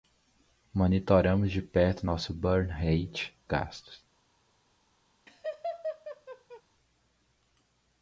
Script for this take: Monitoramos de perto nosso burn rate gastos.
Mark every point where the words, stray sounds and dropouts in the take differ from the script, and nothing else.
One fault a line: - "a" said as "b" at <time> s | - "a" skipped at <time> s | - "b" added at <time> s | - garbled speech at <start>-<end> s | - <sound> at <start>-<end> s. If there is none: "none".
- laugh at 5.3-6.6 s